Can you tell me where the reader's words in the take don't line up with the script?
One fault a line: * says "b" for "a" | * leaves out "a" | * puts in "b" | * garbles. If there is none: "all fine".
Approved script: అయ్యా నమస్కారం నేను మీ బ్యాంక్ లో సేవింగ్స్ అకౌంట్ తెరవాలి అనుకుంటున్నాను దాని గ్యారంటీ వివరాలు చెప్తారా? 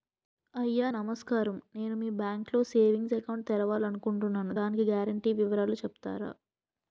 all fine